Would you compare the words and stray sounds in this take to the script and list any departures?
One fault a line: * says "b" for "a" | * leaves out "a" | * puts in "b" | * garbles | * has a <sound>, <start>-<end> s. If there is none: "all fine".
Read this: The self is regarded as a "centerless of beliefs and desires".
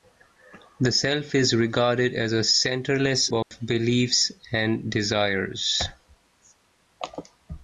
* has a dropout, 3.4-3.5 s